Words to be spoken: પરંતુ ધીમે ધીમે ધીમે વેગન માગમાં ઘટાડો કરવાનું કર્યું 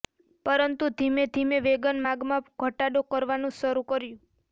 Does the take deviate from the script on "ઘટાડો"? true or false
false